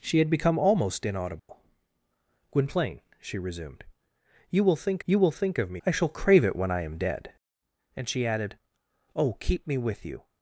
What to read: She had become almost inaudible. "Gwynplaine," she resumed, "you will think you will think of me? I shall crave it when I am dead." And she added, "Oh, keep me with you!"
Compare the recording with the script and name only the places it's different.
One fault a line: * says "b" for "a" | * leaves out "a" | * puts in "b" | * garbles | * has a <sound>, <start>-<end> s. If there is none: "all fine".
* has a dropout, 1.4-1.5 s